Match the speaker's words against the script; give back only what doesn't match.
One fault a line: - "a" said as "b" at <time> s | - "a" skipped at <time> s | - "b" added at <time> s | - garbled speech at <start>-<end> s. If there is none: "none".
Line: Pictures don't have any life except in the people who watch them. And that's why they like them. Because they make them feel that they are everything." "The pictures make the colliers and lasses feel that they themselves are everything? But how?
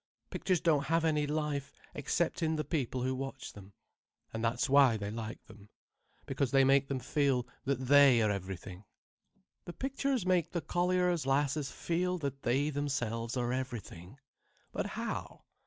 - "and" skipped at 11.2 s